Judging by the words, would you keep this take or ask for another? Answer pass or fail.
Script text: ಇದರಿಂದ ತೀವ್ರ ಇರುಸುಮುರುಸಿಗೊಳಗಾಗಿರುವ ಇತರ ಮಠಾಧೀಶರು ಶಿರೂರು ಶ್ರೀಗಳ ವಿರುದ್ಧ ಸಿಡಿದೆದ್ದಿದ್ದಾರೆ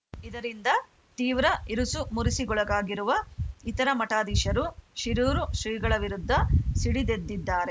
pass